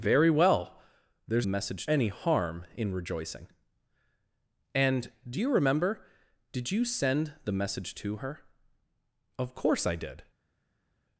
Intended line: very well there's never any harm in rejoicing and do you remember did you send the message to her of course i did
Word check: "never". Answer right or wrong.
wrong